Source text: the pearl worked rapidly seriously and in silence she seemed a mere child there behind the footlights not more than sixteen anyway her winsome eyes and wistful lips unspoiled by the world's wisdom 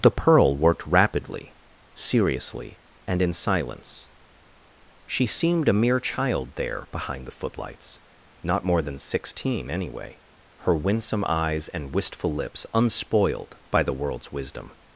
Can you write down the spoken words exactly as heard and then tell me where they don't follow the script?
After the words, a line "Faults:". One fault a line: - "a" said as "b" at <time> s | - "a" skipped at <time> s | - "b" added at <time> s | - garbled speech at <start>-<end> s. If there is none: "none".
the pearl worked rapidly seriously and in silence she seemed a mere child there behind the footlights not more than sixteen anyway her winsome eyes and wistful lips unspoiled by the world's wisdom
Faults:
none